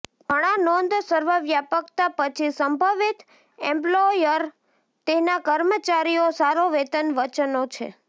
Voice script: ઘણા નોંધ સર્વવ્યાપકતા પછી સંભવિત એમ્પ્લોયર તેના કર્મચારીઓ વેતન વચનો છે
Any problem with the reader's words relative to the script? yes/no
yes